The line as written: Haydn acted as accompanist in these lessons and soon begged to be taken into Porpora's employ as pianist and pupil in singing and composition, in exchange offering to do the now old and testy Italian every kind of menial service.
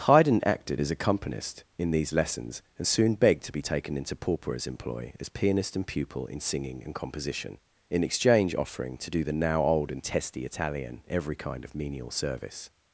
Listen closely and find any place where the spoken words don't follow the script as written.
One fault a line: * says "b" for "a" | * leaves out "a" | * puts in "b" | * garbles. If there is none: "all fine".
all fine